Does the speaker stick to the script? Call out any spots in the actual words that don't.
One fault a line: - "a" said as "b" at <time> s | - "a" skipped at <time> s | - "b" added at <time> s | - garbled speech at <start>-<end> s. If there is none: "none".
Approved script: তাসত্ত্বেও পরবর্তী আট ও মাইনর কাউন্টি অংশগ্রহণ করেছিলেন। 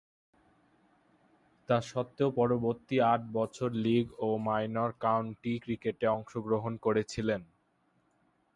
- "বছর লীগ" added at 3.4 s
- "ক্রিকেটে" added at 5.6 s